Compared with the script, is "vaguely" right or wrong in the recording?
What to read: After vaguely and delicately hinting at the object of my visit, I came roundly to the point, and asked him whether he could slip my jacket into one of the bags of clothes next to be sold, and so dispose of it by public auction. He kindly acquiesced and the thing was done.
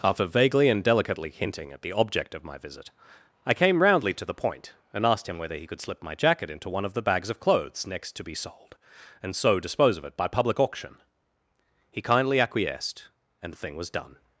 right